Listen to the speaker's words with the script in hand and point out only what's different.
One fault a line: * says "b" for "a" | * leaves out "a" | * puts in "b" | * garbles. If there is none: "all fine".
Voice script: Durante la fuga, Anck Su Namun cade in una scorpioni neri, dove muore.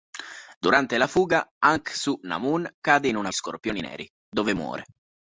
all fine